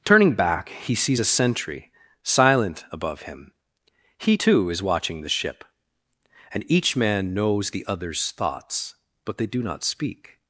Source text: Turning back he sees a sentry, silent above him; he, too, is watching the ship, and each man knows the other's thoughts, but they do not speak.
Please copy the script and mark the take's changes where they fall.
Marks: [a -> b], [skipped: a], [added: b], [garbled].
Turning back he sees a sentry, silent above him; he, too, is watching the ship, and each man knows the other's thoughts, but they do not speak.